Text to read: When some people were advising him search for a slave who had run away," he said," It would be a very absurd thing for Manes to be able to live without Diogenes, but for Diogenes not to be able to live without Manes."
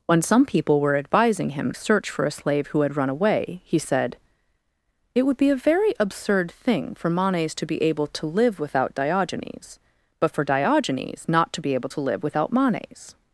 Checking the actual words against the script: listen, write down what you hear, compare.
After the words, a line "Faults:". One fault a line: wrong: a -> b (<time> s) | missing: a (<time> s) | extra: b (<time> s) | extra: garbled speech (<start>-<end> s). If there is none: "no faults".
When some people were advising him search for a slave who had run away," he said," It would be a very absurd thing for Manes to be able to live without Diogenes, but for Diogenes not to be able to live without Manes."
Faults:
no faults